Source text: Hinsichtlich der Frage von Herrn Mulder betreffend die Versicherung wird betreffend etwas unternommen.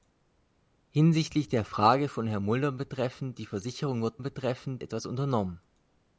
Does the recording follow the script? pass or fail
pass